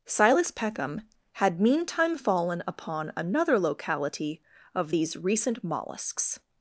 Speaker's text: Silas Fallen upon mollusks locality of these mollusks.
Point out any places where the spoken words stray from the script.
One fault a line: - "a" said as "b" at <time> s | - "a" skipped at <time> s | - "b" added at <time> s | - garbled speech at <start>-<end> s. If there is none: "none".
- "Peckham had meantime" added at 0.5 s
- "mollusks" said as "another" at 3.2 s
- "recent" added at 5.2 s